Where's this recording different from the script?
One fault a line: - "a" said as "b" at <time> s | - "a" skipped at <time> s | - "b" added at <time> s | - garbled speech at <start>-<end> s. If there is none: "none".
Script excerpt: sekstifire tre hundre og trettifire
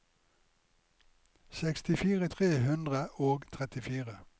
none